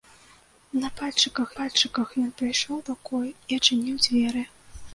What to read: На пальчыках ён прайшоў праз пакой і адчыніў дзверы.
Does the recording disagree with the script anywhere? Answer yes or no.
yes